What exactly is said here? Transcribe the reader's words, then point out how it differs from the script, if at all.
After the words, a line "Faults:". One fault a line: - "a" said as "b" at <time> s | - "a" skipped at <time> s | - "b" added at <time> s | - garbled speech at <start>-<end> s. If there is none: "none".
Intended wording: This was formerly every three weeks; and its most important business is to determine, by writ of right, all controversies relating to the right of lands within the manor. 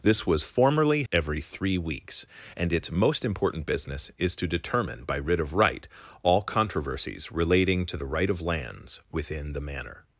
This was formerly every three weeks; and its most important business is to determine, by writ of right, all controversies relating to the right of lands within the manor.
Faults:
none